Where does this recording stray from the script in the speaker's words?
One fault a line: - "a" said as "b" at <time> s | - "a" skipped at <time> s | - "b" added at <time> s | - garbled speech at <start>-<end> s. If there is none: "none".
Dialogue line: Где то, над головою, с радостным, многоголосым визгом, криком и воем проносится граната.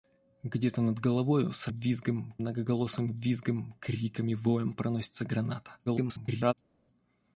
- "радостным" said as "визгом" at 1.7 s
- garbled speech at 5.9-6.5 s